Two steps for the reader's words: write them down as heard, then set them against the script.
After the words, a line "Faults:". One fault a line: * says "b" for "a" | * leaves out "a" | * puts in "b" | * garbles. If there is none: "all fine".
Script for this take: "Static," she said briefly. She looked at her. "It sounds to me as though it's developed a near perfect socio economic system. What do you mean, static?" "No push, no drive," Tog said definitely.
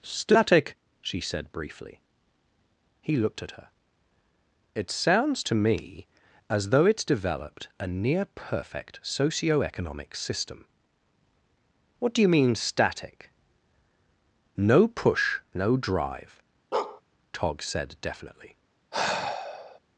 "Static," she said briefly. He looked at her. "It sounds to me as though it's developed a near perfect socio economic system. What do you mean, static?" "No push, no drive," Tog said definitely.
Faults:
* says "He" for "She"